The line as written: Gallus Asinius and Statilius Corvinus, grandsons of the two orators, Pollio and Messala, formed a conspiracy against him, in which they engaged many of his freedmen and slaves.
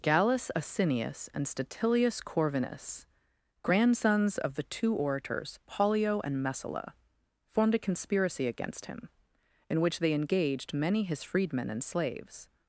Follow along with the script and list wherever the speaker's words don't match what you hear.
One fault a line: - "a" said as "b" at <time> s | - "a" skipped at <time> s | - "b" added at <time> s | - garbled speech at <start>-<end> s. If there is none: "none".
- "of" skipped at 11.0 s